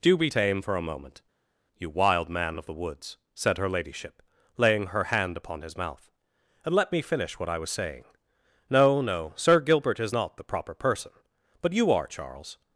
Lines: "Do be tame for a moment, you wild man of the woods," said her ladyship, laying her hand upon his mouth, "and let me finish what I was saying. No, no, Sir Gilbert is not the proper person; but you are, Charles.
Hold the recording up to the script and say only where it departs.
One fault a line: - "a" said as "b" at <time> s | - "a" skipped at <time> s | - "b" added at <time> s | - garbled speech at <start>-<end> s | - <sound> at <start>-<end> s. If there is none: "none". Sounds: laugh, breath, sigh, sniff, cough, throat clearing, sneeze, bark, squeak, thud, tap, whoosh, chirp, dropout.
none